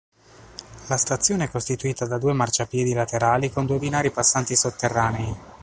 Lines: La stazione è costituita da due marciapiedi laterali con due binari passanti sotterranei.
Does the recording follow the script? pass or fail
pass